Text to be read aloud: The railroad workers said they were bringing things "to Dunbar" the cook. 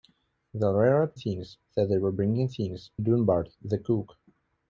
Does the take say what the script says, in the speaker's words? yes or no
no